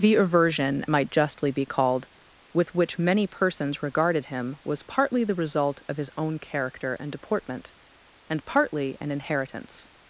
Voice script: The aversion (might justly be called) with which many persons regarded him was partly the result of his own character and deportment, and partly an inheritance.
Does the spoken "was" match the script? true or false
true